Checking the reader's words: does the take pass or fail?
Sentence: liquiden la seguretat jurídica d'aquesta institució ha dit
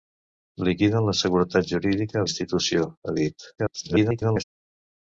fail